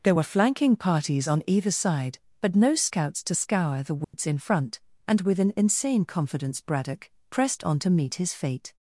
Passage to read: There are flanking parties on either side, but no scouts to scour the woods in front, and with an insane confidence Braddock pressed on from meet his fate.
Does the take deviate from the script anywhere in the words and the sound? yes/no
yes